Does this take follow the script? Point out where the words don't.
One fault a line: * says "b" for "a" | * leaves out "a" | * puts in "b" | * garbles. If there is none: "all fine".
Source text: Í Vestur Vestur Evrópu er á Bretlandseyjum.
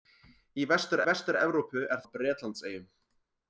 all fine